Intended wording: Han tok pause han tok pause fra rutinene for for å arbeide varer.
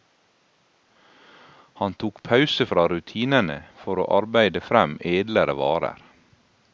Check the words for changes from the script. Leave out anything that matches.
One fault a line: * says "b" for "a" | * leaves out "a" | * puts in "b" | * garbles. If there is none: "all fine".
* leaves out "han tok pause"
* leaves out "for"
* puts in "frem edlere"